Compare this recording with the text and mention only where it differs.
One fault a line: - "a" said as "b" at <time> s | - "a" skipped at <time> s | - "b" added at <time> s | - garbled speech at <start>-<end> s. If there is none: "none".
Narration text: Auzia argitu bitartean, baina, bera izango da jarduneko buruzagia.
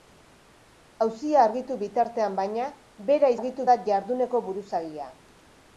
- "izango" said as "argitu" at 3.4 s